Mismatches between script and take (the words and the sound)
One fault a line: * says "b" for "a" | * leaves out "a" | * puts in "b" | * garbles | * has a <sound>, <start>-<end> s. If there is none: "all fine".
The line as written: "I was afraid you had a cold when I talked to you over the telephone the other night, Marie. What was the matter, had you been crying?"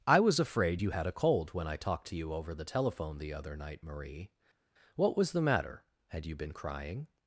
all fine